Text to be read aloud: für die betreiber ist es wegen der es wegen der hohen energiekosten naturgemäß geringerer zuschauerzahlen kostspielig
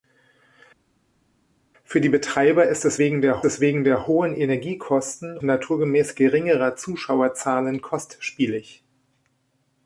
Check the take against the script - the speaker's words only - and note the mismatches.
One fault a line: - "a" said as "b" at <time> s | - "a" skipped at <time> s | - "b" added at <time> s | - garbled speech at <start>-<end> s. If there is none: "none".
none